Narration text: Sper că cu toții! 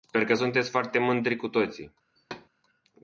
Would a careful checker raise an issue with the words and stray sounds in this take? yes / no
yes